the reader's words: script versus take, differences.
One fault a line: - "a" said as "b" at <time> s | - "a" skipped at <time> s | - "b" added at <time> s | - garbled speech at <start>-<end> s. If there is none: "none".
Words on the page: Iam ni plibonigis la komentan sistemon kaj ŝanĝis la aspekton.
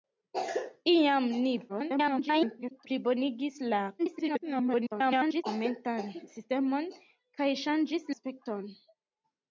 - garbled speech at 1.7-2.9 s
- garbled speech at 4.0-5.4 s
- "la" skipped at 8.1 s